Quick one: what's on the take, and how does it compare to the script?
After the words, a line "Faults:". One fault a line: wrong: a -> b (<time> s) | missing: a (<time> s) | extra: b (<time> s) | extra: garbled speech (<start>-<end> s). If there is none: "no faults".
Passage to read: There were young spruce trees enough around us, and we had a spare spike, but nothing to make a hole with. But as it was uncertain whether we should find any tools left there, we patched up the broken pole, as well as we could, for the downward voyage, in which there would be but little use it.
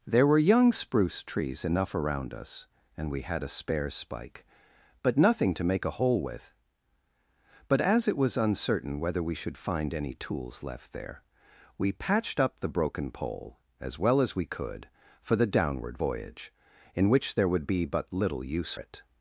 There were young spruce trees enough around us, and we had a spare spike, but nothing to make a hole with. But as it was uncertain whether we should find any tools left there, we patched up the broken pole, as well as we could, for the downward voyage, in which there would be but little use it.
Faults:
no faults